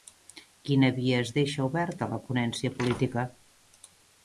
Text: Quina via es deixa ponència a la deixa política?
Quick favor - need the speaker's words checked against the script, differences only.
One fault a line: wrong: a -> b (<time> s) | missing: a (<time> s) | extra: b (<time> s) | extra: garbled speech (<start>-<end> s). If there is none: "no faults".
wrong: ponència -> oberta (1.7 s)
wrong: deixa -> ponència (2.3 s)